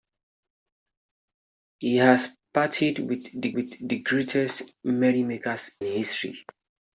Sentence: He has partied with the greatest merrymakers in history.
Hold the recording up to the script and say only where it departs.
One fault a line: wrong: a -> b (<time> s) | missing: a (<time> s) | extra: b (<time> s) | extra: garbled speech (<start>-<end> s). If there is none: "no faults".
extra: with the (3.5 s)
missing: in (5.8 s)